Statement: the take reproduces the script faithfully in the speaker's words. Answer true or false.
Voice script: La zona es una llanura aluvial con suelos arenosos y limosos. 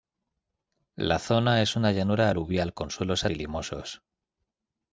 false